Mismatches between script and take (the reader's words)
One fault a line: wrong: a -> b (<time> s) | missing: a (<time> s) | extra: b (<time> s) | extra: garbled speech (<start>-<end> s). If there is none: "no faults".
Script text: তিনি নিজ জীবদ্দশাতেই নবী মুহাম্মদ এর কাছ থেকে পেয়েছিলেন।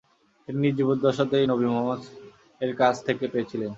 no faults